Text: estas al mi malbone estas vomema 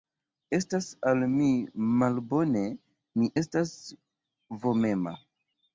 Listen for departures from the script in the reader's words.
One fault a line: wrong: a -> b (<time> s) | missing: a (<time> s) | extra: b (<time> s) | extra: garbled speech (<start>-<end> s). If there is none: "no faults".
extra: mi (3.2 s)